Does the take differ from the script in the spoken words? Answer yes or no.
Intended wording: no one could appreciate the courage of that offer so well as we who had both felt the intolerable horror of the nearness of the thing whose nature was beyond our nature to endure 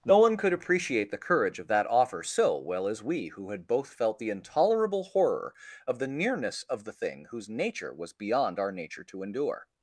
no